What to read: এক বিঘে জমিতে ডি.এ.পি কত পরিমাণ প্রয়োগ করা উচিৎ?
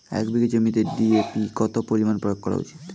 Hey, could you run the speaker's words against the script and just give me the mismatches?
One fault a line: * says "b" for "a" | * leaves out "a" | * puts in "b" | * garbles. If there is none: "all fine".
all fine